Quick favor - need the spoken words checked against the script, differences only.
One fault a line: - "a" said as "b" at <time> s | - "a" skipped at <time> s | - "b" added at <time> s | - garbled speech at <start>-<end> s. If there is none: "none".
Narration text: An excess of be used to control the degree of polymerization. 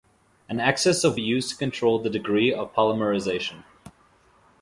none